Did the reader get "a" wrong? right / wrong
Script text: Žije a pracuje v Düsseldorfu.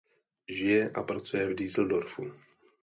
right